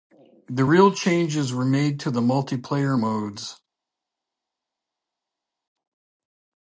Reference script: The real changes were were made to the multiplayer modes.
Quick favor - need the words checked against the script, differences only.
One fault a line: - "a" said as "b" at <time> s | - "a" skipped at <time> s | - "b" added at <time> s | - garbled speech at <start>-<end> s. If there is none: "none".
- "were" skipped at 1.6 s